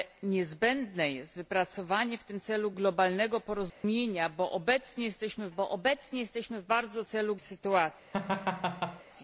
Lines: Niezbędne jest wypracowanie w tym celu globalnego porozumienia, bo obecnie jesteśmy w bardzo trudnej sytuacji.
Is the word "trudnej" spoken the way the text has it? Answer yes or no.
no